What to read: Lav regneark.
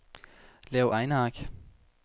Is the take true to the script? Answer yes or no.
yes